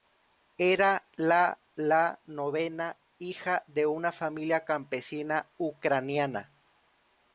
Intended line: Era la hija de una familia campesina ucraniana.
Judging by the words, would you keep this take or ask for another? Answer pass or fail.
fail